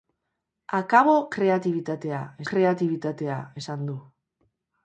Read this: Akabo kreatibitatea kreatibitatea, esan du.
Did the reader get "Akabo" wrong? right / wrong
right